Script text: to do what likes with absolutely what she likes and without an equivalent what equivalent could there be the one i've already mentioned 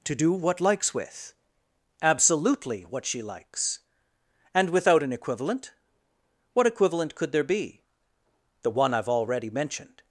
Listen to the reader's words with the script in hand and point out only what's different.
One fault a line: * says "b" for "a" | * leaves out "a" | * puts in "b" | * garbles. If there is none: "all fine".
all fine